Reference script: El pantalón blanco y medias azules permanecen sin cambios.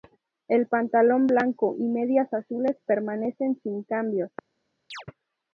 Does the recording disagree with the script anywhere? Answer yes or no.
no